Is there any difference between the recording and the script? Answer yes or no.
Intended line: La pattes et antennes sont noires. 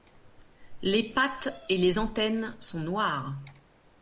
yes